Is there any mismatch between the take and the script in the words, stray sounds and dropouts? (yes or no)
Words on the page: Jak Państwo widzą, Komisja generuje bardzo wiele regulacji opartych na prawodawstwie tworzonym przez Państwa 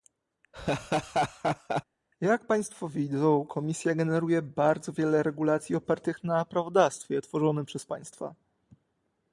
yes